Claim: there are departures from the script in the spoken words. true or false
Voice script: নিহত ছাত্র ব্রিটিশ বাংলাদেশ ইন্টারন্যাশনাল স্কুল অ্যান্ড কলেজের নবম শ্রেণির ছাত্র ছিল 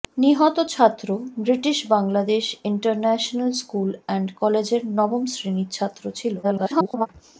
true